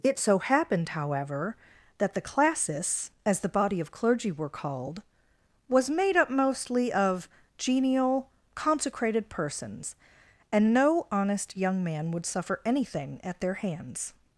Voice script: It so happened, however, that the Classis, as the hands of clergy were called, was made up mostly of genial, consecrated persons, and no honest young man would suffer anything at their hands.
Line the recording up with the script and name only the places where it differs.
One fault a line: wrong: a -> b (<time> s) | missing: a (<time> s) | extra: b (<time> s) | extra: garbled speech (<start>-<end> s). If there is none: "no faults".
wrong: hands -> body (3.5 s)